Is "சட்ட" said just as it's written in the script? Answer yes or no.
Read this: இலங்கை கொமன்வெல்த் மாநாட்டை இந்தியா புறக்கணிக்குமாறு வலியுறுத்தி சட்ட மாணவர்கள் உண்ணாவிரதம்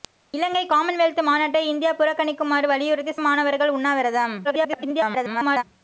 no